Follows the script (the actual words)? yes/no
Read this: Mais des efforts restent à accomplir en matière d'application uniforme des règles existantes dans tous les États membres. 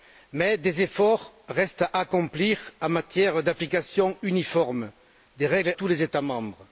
no